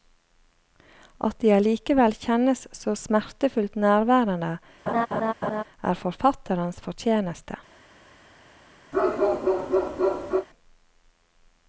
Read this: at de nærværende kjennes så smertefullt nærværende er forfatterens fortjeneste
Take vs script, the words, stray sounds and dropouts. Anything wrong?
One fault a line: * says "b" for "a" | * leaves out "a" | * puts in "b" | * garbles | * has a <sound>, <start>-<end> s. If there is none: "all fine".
* says "allikevel" for "nærværende"
* has a laugh, 4.9-5.6 s
* has a bark, 8.9-10.5 s